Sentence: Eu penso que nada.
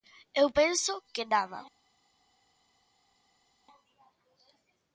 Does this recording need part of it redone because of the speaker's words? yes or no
no